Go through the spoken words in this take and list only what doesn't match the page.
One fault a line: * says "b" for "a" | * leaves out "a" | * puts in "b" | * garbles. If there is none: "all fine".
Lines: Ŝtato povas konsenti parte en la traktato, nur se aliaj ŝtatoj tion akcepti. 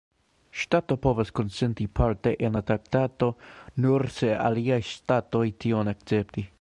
all fine